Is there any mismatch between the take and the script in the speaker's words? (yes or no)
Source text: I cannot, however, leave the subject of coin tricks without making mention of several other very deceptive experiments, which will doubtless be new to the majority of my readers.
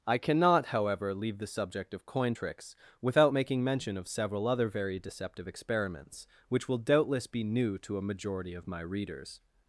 yes